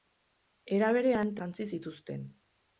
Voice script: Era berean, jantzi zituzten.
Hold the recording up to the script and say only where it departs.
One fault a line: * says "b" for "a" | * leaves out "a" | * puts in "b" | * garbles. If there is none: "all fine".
all fine